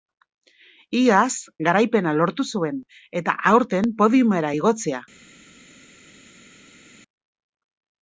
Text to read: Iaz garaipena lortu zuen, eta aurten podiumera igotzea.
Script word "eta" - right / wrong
right